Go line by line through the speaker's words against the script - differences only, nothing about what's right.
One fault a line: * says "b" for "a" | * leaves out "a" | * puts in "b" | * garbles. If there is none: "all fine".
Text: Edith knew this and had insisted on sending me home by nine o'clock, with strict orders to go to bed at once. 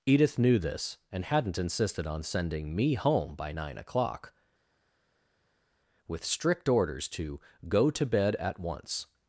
* says "hadn't" for "had"